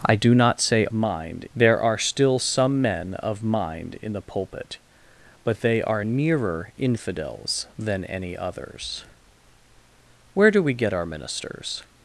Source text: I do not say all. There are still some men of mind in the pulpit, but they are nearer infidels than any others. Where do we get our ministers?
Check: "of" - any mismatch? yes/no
no